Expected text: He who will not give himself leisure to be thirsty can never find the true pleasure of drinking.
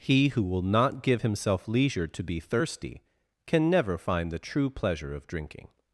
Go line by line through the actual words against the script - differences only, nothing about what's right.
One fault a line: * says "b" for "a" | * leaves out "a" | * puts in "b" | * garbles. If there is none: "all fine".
all fine